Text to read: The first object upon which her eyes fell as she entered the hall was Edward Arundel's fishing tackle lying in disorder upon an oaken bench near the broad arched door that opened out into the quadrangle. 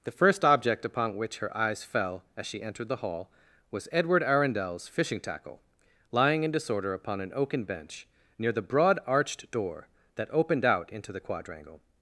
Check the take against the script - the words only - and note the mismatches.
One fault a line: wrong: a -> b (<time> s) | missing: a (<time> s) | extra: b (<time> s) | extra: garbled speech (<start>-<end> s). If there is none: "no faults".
no faults